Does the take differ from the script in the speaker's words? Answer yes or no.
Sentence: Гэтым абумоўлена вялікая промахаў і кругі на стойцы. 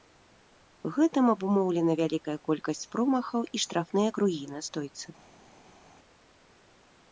yes